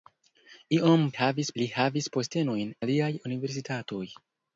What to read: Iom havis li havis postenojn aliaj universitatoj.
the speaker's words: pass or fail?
pass